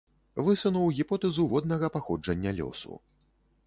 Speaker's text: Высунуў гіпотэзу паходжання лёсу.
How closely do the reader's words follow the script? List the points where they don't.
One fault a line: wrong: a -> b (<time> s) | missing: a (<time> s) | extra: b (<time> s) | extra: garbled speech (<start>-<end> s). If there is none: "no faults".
extra: воднага (1.5 s)